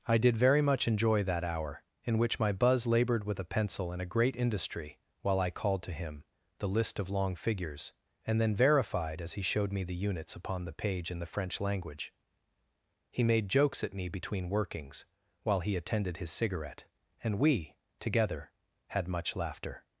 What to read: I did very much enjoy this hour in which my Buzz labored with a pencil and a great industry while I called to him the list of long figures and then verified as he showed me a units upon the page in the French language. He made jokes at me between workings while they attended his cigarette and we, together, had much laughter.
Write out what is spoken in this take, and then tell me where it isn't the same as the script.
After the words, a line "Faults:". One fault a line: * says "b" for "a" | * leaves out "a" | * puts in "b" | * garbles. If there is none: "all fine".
I did very much enjoy that hour in which my Buzz labored with a pencil and a great industry while I called to him the list of long figures and then verified as he showed me the units upon the page in the French language. He made jokes at me between workings while he attended his cigarette and we, together, had much laughter.
Faults:
* says "that" for "this"
* says "the" for "a"
* says "he" for "they"